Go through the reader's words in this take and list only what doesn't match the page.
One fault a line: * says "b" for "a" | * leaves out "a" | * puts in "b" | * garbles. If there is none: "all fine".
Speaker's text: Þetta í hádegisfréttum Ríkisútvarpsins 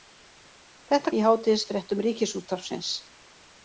all fine